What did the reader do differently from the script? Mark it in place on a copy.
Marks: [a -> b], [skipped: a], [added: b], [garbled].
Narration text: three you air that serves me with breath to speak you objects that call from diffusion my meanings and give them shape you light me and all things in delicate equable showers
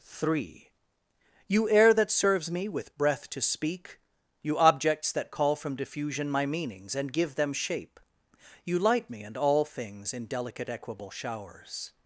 three you air that serves me with breath to speak you objects that call from diffusion my meanings and give them shape you light me and all things in delicate equable showers